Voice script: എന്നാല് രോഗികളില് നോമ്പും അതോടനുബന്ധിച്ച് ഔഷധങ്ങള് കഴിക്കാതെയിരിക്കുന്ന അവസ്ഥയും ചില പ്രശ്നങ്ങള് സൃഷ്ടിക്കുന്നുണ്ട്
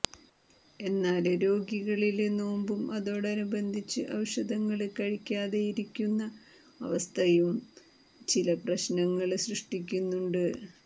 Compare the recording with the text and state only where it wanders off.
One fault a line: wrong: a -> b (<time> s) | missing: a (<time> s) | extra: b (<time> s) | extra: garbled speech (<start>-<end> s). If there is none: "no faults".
no faults